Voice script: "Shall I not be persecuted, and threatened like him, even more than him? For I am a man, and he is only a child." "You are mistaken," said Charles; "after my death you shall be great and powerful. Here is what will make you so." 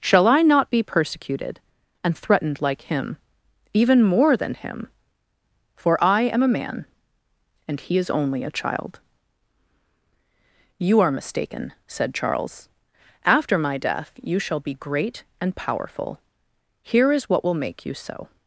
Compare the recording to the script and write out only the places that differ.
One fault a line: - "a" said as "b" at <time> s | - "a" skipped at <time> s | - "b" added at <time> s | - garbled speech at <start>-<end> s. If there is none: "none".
none